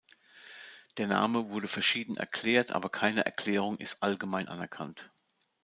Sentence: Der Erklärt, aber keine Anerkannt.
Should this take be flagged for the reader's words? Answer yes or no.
yes